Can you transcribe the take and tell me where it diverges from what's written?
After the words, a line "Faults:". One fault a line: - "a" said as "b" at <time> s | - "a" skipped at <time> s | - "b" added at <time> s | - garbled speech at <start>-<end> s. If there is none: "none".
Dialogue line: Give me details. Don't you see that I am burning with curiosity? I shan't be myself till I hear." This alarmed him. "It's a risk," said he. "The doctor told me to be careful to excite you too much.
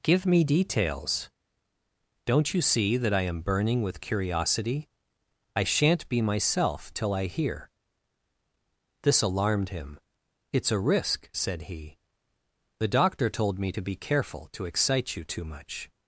Give me details. Don't you see that I am burning with curiosity? I shan't be myself till I hear." This alarmed him. "It's a risk," said he. "The doctor told me to be careful to excite you too much.
Faults:
none